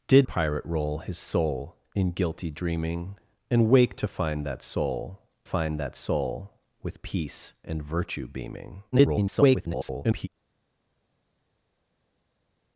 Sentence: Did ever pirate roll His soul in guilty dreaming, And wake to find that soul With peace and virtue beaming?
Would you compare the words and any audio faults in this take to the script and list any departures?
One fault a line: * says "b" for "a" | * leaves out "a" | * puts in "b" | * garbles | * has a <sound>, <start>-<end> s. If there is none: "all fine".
* leaves out "ever"
* puts in "find that soul"
* garbles